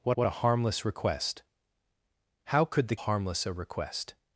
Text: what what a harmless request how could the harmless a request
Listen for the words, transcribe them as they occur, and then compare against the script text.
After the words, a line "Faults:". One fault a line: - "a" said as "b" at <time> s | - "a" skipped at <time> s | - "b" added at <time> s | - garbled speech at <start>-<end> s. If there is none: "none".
what what a harmless request how could the harmless a request
Faults:
none